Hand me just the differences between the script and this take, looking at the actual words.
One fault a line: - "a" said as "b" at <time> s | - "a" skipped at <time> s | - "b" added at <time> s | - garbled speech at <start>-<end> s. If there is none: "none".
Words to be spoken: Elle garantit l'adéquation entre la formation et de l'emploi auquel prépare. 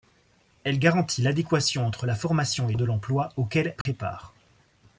none